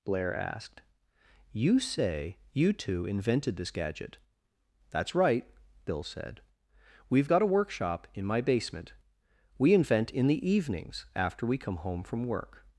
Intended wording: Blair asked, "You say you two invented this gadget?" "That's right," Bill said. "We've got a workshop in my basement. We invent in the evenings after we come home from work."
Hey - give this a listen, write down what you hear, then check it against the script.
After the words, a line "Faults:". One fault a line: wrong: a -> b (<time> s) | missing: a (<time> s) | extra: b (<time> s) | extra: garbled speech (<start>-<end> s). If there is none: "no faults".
Blair asked, "You say you two invented this gadget?" "That's right," Bill said. "We've got a workshop in my basement. We invent in the evenings after we come home from work."
Faults:
no faults